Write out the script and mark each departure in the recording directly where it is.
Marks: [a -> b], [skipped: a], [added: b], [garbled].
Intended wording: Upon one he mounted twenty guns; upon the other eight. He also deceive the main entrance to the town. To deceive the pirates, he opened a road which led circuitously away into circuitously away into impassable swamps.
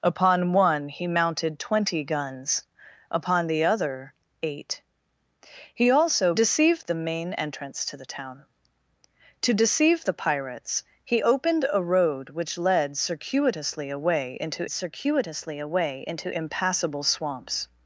Upon one he mounted twenty guns; upon the other eight. He also deceive the main entrance to the town. To deceive the pirates, he opened a road which led circuitously away into circuitously away into impassable swamps.